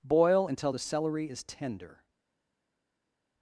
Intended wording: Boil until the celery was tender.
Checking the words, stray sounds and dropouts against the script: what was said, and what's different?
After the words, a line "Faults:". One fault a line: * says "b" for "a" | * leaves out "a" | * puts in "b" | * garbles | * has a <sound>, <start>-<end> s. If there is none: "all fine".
Boil until the celery is tender.
Faults:
* says "is" for "was"